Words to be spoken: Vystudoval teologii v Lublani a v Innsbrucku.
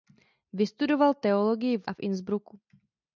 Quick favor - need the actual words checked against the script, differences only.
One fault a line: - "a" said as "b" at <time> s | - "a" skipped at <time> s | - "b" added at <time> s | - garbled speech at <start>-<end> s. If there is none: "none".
- "Lublani" skipped at 1.9 s